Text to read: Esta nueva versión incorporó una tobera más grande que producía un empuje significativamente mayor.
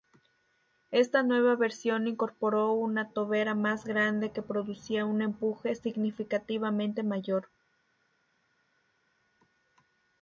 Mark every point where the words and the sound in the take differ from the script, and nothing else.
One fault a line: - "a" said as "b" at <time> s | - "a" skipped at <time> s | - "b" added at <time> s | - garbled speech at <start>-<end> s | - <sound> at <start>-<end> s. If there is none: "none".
none